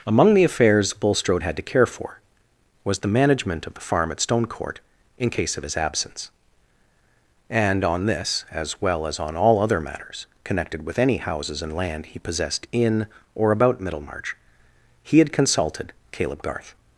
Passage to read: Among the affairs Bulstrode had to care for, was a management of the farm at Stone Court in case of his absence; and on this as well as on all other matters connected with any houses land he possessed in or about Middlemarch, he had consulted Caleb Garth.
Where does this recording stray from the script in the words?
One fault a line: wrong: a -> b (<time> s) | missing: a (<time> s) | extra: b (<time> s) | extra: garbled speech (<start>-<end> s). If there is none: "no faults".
wrong: a -> the (3.0 s)
extra: and (11.6 s)